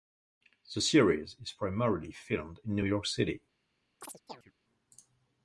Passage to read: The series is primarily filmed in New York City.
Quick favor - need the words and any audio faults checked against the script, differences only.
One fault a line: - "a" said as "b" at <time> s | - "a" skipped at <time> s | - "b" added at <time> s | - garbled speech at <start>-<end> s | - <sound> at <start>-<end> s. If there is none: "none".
- chirp at 4.0-4.5 s